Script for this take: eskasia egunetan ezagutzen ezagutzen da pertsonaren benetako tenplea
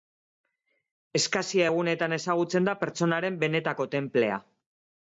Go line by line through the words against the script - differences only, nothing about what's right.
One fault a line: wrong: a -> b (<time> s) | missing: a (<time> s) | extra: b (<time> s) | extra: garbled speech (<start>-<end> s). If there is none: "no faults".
missing: ezagutzen (2.7 s)